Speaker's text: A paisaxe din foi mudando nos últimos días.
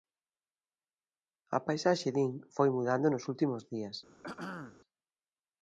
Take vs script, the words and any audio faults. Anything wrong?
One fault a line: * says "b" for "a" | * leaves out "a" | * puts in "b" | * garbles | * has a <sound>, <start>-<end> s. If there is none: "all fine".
* has a throat clearing, 4.2-4.8 s